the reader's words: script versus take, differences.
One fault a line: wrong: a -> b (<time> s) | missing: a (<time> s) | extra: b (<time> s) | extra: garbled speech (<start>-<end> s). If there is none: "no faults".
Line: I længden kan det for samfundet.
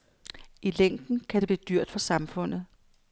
extra: blive dyrt (1.5 s)